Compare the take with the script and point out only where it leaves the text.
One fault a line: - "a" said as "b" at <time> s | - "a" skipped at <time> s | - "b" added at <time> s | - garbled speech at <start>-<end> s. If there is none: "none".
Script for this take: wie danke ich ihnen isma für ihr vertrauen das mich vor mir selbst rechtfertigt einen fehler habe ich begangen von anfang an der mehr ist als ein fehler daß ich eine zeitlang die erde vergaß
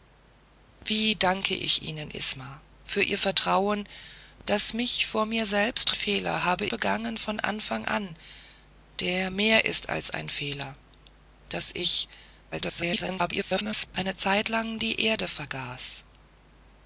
- "rechtfertigt einen" skipped at 5.9 s
- "ich" skipped at 6.7 s
- garbled speech at 12.5-13.9 s